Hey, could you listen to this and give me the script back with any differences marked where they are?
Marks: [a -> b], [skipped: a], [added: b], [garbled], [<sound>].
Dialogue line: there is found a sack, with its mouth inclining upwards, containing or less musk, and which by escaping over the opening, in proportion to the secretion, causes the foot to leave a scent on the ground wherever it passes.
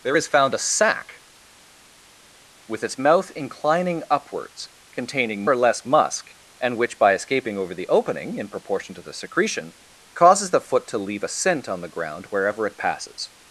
there is found a sack, with its mouth inclining upwards, containing or less musk, and which by escaping over the opening, in proportion to the secretion, causes the foot to leave a scent on the ground wherever it passes.